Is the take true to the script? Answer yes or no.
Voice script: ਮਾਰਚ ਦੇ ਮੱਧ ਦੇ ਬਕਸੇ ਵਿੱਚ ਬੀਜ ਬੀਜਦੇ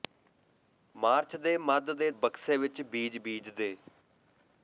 yes